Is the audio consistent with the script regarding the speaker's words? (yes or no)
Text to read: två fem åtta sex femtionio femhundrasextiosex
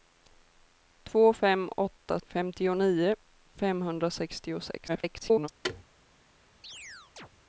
no